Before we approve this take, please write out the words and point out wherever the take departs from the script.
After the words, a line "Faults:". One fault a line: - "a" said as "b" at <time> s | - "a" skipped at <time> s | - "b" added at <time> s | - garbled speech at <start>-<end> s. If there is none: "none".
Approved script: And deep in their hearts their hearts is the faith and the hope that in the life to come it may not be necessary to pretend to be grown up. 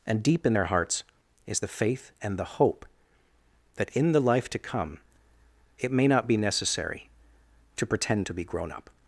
And deep in their hearts is the faith and the hope that in the life to come it may not be necessary to pretend to be grown up.
Faults:
- "their hearts" skipped at 1.0 s